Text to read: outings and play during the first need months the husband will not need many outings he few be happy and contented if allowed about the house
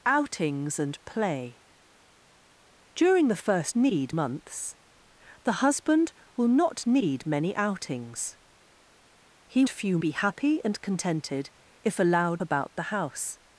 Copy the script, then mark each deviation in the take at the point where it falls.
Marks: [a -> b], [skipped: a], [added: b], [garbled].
outings and play during the first need months the husband will not need many outings he few be happy and contented if allowed about the house